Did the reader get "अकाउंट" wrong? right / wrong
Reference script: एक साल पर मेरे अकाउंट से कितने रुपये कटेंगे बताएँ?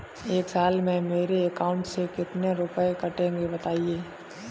right